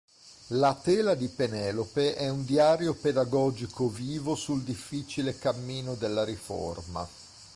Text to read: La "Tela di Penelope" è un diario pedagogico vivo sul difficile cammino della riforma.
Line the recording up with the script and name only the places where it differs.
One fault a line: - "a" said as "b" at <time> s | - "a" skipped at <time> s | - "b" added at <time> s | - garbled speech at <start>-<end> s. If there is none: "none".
none